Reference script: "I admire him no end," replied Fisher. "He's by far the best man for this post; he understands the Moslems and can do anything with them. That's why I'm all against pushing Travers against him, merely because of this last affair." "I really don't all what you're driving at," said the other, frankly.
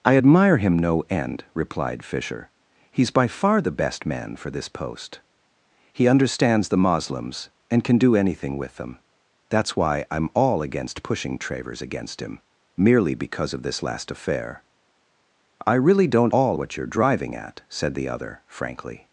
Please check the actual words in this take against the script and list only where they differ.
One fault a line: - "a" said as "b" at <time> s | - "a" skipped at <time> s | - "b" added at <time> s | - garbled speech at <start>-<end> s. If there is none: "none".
none